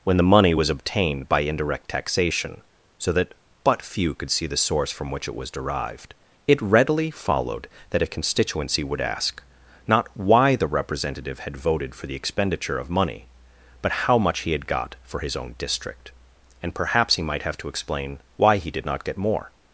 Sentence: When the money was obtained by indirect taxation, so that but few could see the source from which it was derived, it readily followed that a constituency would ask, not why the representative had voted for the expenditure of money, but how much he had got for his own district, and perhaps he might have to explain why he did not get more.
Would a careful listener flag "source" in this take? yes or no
no